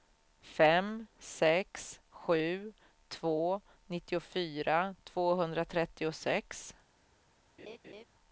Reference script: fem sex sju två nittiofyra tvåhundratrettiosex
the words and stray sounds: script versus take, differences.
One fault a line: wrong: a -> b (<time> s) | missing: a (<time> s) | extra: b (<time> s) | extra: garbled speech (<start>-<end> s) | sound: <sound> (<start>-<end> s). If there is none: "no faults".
sound: laugh (7.6-8.0 s)